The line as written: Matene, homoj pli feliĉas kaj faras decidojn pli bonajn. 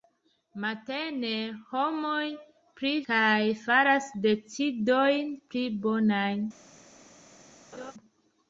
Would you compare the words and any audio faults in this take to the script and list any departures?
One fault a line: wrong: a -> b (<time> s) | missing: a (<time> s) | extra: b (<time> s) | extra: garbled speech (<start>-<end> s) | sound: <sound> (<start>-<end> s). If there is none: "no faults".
missing: feliĉas (2.9 s)
sound: laugh (7.7-7.9 s)